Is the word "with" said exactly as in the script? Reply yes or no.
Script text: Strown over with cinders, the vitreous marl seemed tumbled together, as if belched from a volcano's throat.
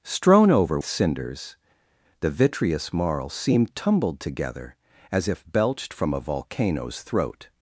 no